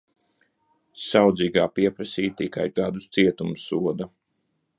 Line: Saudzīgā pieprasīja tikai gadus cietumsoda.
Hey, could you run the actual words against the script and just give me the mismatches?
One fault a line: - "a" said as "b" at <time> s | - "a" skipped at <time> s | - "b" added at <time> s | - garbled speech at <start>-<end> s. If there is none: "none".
none